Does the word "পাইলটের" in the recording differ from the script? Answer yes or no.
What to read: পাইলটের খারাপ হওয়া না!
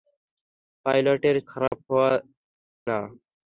no